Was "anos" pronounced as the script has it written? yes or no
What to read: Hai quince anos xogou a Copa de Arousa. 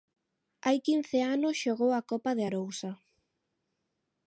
yes